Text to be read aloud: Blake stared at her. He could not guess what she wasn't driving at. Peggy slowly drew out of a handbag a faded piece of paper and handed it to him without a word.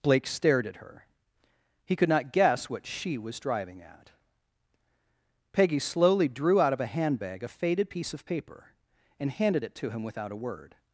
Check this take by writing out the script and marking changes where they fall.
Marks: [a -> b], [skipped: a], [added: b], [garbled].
Blake stared at her. He could not guess what she [wasn't -> was] driving at. Peggy slowly drew out of a handbag a faded piece of paper and handed it to him without a word.